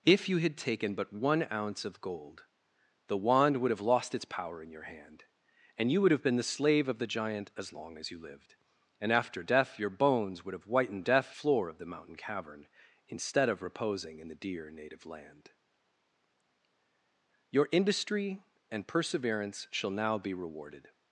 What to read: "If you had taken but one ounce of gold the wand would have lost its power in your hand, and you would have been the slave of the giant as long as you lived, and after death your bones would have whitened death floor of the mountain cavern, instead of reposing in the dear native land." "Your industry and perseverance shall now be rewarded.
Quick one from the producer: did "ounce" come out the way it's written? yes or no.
yes